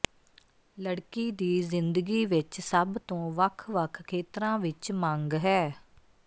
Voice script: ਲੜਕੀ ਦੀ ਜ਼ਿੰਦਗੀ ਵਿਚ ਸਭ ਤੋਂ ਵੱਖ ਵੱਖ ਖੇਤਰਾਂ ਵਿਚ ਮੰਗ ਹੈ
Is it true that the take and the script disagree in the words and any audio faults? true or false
false